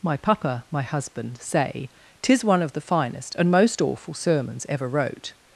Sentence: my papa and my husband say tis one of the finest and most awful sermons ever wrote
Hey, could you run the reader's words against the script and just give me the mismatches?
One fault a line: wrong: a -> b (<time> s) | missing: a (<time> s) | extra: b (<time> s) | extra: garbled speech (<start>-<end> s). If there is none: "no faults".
missing: and (0.7 s)